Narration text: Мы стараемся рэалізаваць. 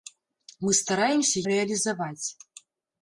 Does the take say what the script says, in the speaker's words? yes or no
yes